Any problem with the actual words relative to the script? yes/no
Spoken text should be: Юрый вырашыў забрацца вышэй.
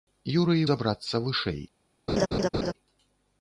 yes